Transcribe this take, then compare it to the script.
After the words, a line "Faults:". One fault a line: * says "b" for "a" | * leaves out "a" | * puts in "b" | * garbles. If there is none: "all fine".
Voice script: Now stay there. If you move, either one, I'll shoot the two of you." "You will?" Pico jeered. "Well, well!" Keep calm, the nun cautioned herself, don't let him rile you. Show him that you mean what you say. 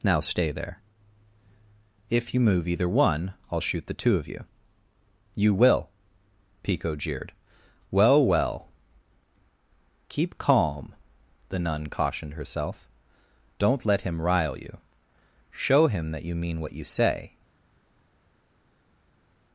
Now stay there. If you move, either one, I'll shoot the two of you." "You will?" Pico jeered. "Well, well!" Keep calm, the nun cautioned herself, don't let him rile you. Show him that you mean what you say.
Faults:
all fine